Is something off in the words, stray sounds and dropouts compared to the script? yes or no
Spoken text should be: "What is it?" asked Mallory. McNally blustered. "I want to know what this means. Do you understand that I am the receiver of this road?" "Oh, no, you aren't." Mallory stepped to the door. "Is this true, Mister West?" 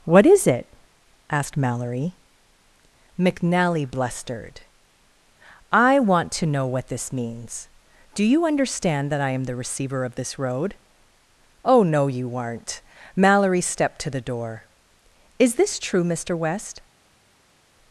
no